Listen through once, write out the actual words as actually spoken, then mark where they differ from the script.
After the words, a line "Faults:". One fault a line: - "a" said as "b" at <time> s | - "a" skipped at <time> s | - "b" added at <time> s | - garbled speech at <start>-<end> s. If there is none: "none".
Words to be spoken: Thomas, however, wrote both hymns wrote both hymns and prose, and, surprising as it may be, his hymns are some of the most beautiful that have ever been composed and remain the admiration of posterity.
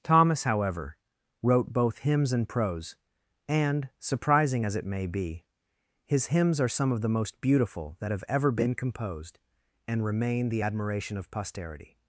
Thomas, however, wrote both hymns and prose, and, surprising as it may be, his hymns are some of the most beautiful that have ever been composed and remain the admiration of posterity.
Faults:
- "wrote both hymns" skipped at 2.3 s